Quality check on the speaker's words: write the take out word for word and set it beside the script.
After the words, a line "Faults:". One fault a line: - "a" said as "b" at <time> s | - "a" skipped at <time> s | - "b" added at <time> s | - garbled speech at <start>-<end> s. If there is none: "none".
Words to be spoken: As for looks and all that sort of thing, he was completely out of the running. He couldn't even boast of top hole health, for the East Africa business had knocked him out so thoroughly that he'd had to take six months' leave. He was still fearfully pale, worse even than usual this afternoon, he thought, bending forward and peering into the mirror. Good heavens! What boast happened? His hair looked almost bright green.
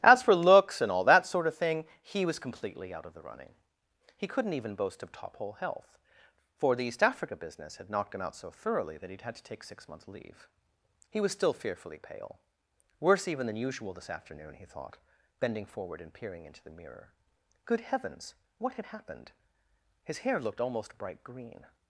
As for looks and all that sort of thing, he was completely out of the running. He couldn't even boast of top hole health, for the East Africa business had knocked him out so thoroughly that he'd had to take six months' leave. He was still fearfully pale, worse even than usual this afternoon, he thought, bending forward and peering into the mirror. Good heavens! What had happened? His hair looked almost bright green.
Faults:
- "boast" said as "had" at 18.7 s